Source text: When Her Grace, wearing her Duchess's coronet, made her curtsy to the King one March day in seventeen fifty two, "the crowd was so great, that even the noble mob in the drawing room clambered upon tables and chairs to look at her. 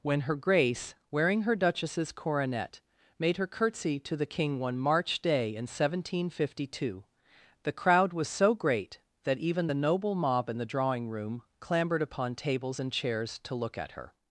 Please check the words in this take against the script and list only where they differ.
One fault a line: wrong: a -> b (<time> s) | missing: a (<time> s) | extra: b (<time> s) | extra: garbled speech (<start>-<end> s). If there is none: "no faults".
no faults